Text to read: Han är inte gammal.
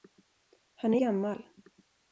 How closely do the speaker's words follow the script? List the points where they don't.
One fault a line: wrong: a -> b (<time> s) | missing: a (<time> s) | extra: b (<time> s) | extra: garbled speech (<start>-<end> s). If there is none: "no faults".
missing: inte (1.0 s)